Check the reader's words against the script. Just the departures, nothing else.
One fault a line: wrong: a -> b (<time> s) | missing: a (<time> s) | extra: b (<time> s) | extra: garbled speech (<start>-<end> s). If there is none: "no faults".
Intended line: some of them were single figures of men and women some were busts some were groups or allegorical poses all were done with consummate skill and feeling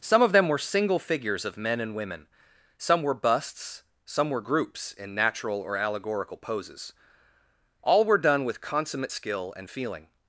extra: in natural (4.9 s)